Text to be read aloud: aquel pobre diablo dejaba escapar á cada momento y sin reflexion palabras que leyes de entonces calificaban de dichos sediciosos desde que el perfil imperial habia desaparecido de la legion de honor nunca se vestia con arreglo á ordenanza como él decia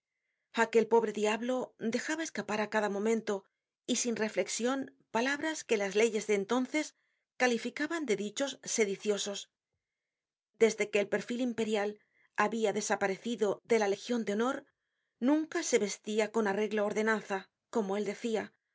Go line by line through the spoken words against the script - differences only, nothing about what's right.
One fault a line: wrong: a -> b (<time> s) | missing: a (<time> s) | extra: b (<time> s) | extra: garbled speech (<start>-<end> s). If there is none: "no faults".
extra: las (5.8 s)